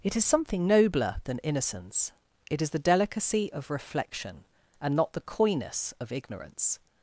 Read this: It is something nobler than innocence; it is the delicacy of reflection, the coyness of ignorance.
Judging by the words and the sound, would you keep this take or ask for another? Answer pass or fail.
fail